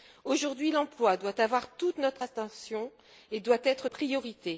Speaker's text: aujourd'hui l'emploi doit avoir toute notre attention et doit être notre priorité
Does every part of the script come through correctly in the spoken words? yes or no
no